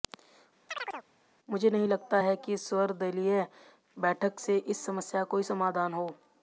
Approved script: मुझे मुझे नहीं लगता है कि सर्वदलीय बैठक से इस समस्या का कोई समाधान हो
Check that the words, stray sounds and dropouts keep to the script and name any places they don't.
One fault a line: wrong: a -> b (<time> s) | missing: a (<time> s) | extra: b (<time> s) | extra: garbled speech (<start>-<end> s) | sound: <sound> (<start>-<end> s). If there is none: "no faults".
sound: chirp (0.7-1.1 s)
missing: मुझे (1.7 s)